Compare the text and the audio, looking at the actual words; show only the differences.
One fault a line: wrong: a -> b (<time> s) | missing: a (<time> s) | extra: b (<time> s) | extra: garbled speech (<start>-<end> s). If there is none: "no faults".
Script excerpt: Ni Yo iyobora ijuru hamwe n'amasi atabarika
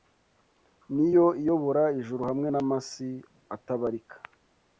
no faults